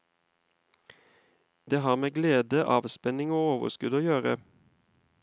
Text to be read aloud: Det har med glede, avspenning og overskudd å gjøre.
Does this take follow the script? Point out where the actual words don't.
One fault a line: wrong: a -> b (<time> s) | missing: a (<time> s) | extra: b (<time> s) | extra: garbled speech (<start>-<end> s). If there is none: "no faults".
no faults